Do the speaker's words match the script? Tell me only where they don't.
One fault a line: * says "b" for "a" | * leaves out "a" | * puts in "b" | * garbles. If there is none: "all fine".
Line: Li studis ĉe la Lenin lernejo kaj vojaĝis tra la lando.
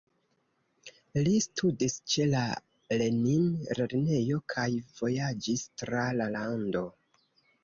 all fine